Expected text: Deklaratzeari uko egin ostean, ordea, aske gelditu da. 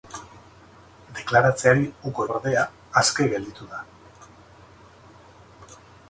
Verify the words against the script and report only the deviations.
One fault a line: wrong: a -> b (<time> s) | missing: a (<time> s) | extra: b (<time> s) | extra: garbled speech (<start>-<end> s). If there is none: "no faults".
missing: egin ostean (2.2 s)